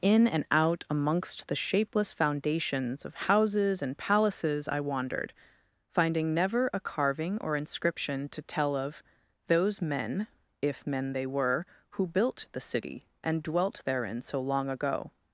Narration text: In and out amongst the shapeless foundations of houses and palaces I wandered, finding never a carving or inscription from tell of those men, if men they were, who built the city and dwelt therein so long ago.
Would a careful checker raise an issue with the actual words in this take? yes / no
yes